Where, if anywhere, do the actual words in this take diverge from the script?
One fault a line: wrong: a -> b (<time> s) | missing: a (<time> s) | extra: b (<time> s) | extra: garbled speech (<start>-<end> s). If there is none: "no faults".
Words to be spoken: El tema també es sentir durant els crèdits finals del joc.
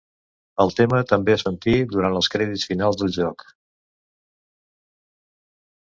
no faults